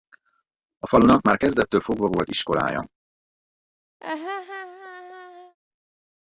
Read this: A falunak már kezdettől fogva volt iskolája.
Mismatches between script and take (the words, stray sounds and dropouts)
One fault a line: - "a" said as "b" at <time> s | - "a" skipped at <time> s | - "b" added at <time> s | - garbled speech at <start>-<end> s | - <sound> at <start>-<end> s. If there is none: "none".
- laugh at 4.0-5.6 s